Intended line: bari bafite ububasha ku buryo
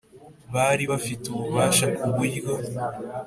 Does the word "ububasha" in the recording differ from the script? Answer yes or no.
no